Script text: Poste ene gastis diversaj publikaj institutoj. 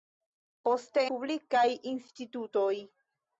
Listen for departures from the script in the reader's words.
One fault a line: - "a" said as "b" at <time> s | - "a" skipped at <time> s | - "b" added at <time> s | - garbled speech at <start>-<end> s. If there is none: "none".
- "ene gastis diversaj" skipped at 1.0 s